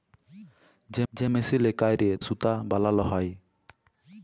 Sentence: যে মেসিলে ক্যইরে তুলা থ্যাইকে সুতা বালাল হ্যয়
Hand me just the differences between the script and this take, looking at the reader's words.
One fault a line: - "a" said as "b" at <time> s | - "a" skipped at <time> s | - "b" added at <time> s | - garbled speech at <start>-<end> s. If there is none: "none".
- "যে" added at 1.1 s
- "তুলা থ্যাইকে" skipped at 2.1 s